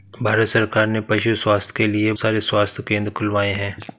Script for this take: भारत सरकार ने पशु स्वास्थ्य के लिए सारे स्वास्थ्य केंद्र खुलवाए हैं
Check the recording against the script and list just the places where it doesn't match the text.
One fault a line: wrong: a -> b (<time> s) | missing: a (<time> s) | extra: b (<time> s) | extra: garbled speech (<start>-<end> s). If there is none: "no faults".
no faults